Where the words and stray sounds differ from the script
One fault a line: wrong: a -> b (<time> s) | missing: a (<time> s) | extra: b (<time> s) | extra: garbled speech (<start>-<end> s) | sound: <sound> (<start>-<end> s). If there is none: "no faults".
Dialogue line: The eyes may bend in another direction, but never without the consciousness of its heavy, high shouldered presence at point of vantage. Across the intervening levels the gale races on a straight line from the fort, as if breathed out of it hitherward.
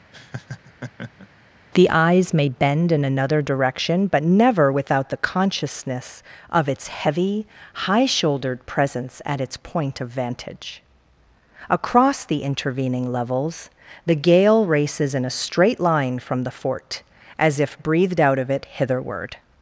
sound: laugh (0.1-1.3 s)
extra: its (9.4 s)
wrong: on -> in (15.1 s)